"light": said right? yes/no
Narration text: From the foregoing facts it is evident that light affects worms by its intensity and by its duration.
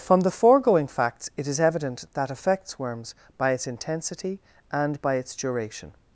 no